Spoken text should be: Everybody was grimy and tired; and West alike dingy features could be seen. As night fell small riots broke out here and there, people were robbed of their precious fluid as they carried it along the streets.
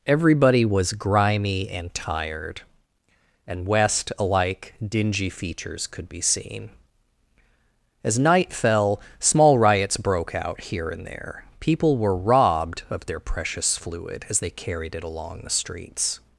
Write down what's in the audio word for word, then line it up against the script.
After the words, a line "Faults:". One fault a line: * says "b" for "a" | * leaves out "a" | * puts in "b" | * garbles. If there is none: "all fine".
Everybody was grimy and tired; and West alike dingy features could be seen. As night fell small riots broke out here and there, people were robbed of their precious fluid as they carried it along the streets.
Faults:
all fine